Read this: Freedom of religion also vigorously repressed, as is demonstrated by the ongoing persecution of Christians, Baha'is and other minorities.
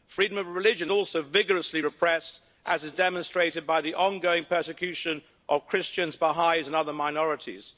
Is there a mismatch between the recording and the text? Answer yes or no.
no